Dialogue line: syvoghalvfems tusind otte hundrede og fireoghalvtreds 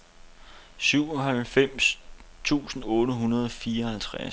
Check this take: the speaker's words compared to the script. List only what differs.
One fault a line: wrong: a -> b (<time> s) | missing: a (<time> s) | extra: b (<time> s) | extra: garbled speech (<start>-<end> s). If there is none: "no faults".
no faults